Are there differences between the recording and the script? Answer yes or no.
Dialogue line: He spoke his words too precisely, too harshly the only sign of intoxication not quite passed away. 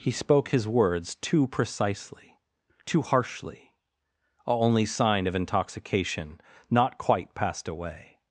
yes